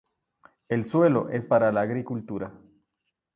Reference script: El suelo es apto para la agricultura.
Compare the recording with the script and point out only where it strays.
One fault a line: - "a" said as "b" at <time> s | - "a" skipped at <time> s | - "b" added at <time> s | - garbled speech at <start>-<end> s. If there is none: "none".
- "apto" skipped at 1.5 s